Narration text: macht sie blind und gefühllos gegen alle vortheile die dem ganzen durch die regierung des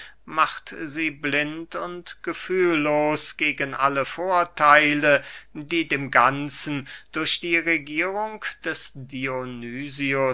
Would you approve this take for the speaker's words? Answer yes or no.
yes